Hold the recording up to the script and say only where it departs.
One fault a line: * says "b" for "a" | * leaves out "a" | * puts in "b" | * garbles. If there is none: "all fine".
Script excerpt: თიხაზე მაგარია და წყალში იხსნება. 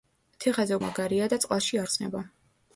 all fine